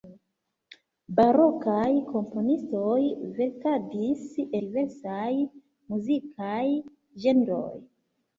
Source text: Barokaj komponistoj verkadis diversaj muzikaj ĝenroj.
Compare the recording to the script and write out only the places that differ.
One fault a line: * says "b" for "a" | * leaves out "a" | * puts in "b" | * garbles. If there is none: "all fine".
all fine